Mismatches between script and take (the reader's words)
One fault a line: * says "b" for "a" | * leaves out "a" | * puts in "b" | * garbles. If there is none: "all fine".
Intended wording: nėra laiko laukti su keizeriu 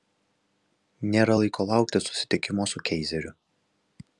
* puts in "susitikimo"